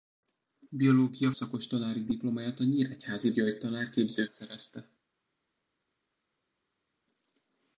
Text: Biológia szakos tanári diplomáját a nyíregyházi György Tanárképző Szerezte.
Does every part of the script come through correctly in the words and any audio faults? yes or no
yes